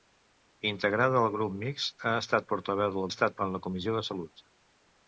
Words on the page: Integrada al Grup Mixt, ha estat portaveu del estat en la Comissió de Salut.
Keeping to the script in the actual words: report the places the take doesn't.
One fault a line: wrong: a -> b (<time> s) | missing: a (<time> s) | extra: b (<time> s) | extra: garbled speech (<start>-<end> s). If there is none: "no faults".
no faults